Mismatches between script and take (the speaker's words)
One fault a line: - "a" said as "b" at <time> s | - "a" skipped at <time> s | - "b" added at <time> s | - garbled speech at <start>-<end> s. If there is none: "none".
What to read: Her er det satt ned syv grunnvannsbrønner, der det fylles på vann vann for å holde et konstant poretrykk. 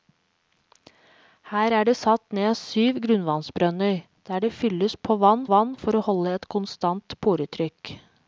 none